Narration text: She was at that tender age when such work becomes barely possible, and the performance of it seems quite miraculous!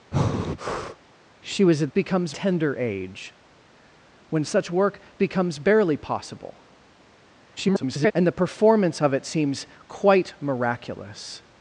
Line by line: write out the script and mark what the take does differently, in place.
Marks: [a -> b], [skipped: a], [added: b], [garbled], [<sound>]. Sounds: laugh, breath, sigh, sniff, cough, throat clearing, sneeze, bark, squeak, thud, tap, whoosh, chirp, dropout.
[breath] She was at [that -> becomes] tender age when such work becomes barely possible, [garbled] and the performance of it seems quite miraculous!